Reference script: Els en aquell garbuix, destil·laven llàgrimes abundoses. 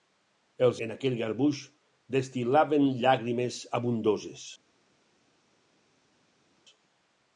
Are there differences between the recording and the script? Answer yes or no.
no